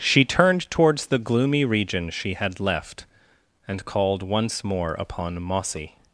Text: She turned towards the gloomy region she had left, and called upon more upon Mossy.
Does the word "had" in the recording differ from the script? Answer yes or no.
no